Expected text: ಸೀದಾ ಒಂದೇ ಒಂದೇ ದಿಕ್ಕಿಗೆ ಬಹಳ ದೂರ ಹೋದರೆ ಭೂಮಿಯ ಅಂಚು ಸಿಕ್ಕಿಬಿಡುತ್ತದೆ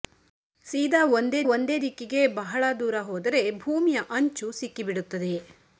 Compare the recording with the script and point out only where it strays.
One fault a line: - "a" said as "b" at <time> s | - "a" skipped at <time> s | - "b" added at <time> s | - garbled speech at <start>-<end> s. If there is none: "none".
none